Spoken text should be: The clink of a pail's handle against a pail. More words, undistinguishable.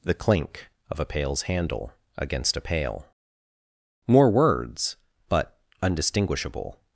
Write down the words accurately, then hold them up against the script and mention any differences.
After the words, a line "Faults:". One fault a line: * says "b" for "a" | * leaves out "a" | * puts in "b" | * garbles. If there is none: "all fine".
The clink of a pail's handle against a pail. More words, but undistinguishable.
Faults:
* puts in "but"